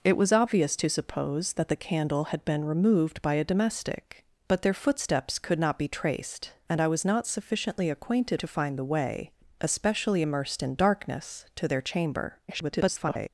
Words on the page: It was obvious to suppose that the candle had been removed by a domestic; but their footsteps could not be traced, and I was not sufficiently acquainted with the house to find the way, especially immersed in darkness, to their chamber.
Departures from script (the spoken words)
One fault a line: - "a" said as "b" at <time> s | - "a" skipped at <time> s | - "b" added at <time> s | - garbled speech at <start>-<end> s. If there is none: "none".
- "with the house" skipped at 8.4 s
- garbled speech at 12.5-13.3 s